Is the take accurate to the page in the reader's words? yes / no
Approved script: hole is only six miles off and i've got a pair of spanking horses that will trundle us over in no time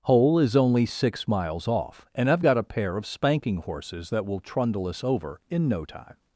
yes